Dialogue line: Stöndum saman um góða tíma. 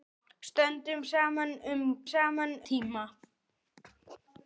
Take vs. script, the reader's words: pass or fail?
fail